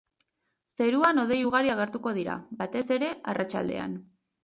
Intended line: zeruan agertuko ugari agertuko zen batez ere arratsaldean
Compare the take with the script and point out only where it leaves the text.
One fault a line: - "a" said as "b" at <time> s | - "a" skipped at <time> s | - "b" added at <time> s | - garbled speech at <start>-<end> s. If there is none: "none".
- "agertuko" said as "hodei" at 1.2 s
- "zen" said as "dira" at 2.2 s